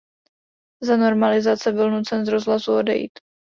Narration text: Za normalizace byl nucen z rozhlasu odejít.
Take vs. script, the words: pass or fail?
pass